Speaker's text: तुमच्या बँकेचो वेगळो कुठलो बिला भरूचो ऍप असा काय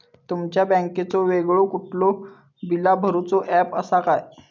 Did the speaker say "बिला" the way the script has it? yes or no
yes